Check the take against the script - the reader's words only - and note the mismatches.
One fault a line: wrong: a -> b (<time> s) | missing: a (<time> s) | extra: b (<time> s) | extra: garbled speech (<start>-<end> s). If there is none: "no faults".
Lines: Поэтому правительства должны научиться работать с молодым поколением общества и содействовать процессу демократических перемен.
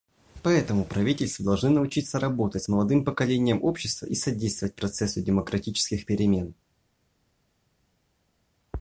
no faults